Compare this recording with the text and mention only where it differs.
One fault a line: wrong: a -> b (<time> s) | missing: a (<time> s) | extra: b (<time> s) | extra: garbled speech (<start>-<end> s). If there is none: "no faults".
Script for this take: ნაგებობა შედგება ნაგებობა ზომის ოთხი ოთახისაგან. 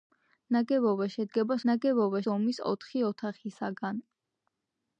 no faults